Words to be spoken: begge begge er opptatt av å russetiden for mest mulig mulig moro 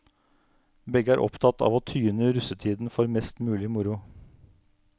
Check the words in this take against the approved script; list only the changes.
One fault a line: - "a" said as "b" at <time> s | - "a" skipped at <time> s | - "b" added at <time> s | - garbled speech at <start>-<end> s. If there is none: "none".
- "begge" skipped at 1.1 s
- "tyne" added at 1.9 s
- "mulig" skipped at 3.7 s